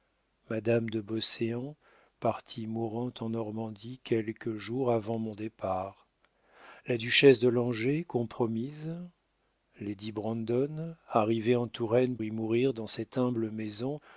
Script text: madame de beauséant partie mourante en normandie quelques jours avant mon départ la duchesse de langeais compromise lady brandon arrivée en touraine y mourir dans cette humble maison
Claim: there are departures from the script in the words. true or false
false